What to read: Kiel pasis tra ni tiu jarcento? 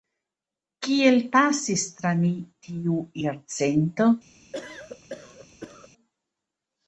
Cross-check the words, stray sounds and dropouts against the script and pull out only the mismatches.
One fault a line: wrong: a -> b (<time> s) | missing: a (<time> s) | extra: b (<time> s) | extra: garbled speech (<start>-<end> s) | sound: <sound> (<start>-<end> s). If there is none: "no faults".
sound: cough (4.5-5.9 s)